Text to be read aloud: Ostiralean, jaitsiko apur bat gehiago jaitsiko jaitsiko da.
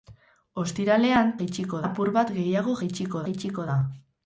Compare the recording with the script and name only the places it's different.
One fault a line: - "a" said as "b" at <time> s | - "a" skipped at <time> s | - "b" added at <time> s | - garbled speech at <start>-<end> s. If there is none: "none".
none